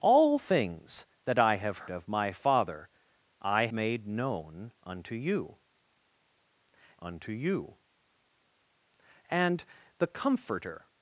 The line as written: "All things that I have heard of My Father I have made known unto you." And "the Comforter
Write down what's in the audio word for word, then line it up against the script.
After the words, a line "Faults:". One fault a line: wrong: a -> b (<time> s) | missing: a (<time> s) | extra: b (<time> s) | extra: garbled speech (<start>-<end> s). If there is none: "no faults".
"All things that I have of My Father I made known unto you unto you." And "the Comforter
Faults:
missing: heard (1.9 s)
missing: have (3.7 s)
extra: unto you (7.0 s)